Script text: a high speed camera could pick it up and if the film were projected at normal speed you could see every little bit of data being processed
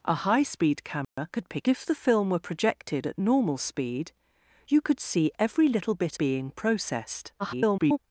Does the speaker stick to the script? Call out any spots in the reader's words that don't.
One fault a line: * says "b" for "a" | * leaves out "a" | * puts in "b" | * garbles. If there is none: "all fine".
* leaves out "it up and"
* leaves out "of data"
* garbles